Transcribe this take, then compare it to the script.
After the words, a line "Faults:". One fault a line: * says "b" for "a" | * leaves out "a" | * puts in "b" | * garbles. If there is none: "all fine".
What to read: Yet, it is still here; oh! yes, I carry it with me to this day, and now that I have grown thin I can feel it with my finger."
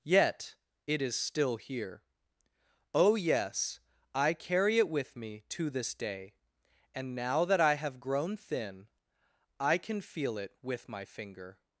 Yet, it is still here; oh! yes, I carry it with me to this day, and now that I have grown thin I can feel it with my finger."
Faults:
all fine